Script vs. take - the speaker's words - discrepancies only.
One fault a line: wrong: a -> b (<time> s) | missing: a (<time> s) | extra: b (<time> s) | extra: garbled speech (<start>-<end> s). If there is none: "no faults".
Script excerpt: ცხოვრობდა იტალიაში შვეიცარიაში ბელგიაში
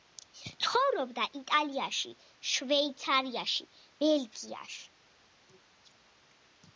no faults